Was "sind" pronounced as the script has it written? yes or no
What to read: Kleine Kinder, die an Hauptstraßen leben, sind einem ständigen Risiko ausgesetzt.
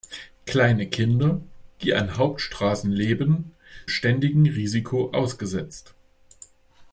no